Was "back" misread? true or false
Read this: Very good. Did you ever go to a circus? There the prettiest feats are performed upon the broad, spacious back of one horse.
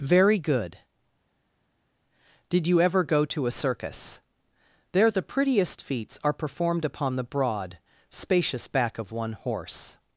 false